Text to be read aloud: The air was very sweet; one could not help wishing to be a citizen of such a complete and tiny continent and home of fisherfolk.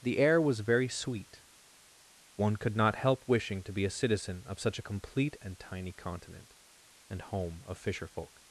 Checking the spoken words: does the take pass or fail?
pass